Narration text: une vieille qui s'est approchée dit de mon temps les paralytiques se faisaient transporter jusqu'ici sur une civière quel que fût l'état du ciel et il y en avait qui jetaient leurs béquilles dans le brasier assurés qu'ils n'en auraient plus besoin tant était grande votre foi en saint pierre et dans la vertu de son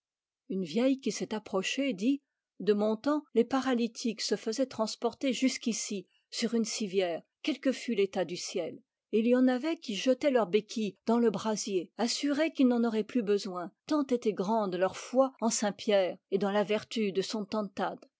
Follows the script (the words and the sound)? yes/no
no